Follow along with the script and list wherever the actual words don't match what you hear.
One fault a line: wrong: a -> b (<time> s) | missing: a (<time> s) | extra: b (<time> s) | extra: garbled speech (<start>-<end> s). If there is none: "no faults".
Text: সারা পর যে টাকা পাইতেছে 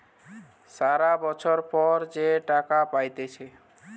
extra: বছর (1.2 s)